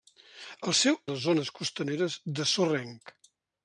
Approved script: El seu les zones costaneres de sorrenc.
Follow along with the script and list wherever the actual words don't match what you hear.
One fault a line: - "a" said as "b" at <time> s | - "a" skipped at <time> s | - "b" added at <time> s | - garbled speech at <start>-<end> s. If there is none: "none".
none